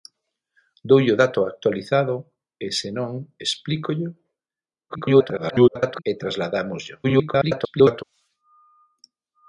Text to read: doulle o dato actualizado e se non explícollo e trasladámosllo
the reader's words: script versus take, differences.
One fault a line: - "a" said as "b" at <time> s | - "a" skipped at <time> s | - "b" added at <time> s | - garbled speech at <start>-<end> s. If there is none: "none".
- garbled speech at 4.9-6.0 s
- garbled speech at 7.0-8.0 s